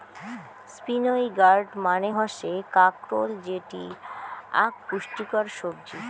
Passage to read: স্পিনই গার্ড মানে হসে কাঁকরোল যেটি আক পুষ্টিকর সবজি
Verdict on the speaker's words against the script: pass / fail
pass